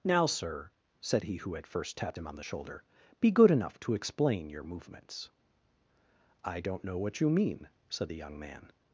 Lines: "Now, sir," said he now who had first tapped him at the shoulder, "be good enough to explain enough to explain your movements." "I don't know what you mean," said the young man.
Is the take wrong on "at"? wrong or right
wrong